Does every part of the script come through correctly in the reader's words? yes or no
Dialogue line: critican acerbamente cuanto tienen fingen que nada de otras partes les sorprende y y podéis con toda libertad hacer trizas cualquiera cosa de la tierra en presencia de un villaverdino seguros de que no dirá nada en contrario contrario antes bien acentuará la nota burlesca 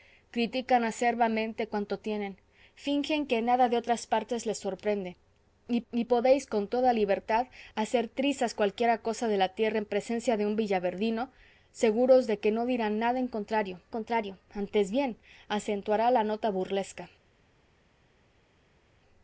yes